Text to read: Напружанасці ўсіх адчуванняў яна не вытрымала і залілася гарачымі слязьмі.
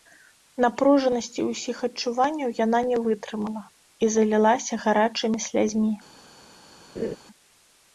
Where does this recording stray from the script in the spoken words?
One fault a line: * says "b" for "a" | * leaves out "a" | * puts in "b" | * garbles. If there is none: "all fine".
all fine